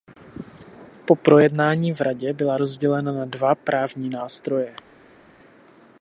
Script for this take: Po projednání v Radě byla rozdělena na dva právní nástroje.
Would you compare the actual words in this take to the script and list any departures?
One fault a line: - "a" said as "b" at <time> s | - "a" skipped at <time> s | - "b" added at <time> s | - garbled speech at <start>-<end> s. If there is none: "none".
none